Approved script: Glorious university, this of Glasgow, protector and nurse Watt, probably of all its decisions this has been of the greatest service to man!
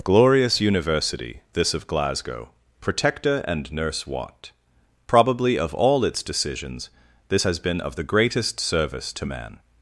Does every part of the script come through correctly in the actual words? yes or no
yes